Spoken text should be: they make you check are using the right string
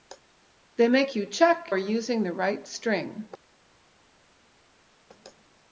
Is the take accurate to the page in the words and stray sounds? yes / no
yes